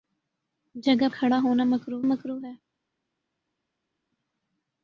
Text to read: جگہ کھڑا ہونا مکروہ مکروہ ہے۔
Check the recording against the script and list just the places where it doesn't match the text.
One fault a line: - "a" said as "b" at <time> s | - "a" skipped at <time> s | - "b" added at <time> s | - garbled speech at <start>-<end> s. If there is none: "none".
none